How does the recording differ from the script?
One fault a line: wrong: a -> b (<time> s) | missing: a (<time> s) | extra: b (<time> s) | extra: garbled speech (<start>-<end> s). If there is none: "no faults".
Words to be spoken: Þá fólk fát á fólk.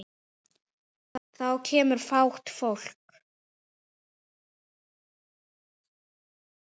wrong: fólk -> kemur (1.7 s)